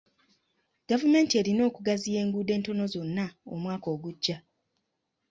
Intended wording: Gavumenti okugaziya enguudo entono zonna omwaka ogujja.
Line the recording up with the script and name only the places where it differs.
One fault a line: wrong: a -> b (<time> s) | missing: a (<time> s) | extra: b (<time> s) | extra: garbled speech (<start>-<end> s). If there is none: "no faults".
extra: erina (1.4 s)